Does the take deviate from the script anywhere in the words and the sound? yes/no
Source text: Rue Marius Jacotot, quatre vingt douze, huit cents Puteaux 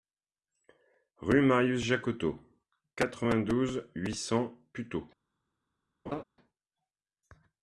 yes